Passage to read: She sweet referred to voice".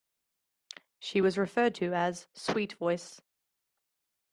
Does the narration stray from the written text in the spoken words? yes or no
yes